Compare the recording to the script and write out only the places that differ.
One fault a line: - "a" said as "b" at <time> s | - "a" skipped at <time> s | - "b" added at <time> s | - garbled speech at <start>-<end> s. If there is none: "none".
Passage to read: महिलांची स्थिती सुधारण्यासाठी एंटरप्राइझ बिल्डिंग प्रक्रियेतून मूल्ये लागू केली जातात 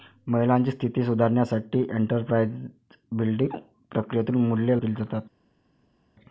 - "लागू" skipped at 4.8 s